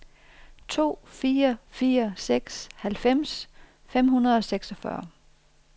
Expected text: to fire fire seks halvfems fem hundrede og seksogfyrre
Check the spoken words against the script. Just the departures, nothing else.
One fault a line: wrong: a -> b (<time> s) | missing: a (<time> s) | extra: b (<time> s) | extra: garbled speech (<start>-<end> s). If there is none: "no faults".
no faults